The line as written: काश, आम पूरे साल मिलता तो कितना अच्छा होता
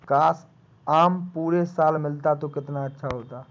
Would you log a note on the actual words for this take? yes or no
no